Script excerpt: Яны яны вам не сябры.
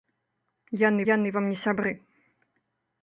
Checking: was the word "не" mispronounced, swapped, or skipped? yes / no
no